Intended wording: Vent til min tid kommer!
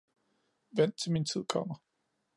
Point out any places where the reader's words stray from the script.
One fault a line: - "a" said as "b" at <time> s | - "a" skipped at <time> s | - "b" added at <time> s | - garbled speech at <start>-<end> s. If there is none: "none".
none